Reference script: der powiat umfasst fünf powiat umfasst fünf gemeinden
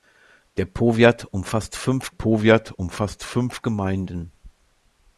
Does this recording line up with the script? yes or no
yes